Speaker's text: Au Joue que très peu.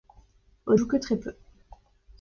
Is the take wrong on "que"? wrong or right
right